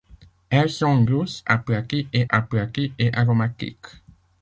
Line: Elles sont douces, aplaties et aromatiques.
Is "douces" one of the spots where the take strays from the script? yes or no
no